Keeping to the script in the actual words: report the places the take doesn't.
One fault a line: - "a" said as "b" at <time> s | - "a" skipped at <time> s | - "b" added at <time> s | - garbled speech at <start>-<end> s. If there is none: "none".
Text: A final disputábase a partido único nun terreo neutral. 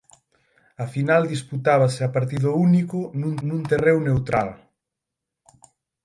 - "nun" added at 3.5 s